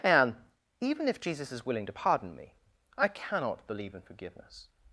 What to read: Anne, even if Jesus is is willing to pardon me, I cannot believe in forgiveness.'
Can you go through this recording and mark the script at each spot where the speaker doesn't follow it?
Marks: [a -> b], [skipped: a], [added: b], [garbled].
Anne, even if Jesus is [skipped: is] willing to pardon me, I cannot believe in forgiveness.'